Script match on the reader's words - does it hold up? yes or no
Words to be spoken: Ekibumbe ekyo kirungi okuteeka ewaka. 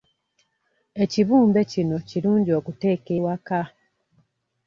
no